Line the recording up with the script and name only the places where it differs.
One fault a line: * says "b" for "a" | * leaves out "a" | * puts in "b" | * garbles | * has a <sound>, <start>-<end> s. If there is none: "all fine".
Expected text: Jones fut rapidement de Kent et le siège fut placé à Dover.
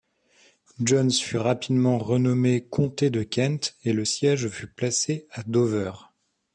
* puts in "renommé comté"